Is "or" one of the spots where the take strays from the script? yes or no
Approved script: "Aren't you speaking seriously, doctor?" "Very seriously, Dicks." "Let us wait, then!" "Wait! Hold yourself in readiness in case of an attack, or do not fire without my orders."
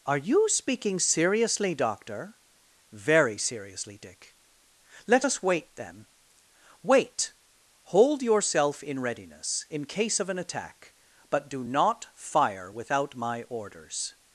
yes